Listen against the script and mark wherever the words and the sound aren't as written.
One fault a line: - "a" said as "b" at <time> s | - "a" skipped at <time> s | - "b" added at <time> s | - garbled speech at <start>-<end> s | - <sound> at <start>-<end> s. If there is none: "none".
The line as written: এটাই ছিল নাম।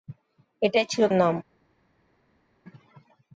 none